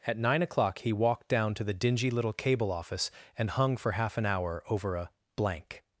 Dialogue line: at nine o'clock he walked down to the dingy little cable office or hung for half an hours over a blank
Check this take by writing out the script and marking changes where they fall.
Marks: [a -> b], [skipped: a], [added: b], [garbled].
at nine o'clock he walked down to the dingy little cable office [or -> and] hung for half an [hours -> hour] over a blank